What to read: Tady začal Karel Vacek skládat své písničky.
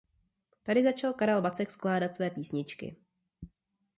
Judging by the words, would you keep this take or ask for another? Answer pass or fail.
pass